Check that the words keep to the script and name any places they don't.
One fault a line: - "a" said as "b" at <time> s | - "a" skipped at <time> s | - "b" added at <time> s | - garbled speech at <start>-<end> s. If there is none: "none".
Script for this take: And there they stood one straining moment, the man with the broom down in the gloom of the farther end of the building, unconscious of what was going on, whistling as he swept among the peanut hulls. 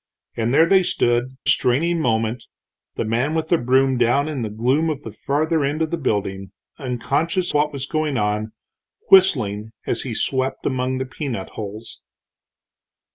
- "one" skipped at 1.4 s
- "of" skipped at 7.5 s